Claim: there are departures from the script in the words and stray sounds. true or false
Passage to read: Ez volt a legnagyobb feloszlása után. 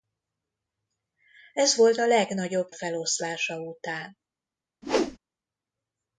true